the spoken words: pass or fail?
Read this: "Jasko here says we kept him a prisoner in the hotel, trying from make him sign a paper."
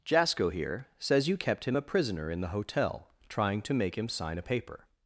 fail